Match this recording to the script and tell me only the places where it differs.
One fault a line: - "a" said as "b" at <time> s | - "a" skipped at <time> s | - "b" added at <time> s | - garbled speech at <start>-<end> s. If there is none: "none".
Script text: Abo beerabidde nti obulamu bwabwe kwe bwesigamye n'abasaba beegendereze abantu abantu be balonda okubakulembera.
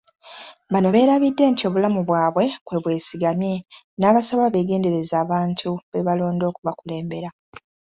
- "Abo" said as "Bano" at 0.7 s
- "abantu" skipped at 5.7 s